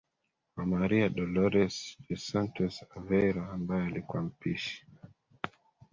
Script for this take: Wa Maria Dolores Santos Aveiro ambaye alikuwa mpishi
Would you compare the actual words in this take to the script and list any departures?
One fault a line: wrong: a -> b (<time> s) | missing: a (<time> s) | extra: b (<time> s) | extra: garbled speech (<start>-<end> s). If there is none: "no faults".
extra: dos (2.1 s)